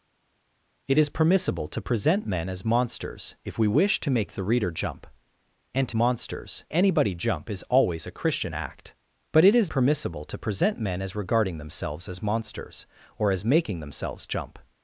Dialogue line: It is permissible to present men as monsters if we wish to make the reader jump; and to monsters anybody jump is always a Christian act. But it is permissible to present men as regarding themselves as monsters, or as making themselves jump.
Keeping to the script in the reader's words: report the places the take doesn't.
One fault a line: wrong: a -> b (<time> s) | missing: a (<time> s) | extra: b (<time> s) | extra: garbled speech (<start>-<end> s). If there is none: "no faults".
no faults